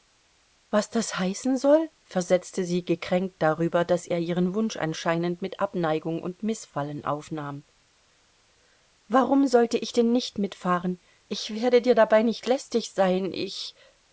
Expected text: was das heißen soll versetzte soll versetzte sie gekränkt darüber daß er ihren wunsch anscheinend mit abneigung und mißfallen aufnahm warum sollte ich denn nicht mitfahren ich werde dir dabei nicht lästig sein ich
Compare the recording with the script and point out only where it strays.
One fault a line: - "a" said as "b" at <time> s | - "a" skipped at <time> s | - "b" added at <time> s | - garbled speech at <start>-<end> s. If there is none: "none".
- "soll versetzte" skipped at 2.6 s